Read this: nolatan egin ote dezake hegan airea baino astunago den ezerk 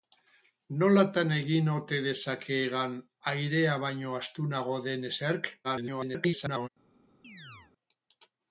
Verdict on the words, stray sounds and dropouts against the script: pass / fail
fail